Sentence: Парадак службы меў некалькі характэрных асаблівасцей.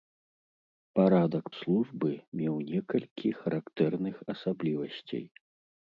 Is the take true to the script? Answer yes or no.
yes